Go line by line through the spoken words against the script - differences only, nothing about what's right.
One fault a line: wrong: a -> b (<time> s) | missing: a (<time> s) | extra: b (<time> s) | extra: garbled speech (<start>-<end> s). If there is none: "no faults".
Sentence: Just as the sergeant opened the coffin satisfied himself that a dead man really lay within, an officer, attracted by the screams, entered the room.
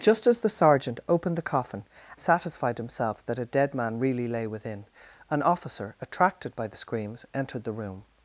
no faults